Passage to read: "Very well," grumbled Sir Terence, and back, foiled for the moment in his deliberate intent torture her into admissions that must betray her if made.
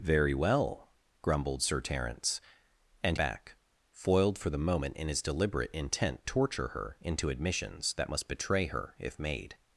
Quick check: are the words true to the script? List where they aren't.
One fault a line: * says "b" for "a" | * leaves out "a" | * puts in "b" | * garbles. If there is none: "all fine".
all fine